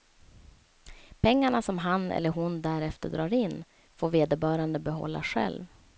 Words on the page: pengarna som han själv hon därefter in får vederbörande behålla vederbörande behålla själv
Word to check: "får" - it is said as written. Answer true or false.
true